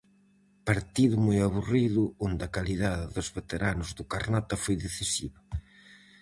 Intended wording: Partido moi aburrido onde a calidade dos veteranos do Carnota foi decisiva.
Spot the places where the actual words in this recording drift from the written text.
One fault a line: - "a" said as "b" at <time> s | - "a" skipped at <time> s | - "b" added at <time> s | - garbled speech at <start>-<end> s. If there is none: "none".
none